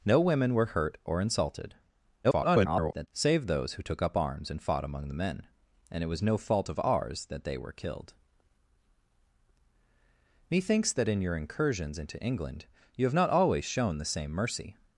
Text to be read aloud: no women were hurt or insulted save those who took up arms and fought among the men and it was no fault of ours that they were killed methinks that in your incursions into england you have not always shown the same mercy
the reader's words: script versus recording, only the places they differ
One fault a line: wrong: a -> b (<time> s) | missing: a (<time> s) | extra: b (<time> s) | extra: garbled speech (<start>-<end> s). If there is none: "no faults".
extra: garbled speech (2.2-3.1 s)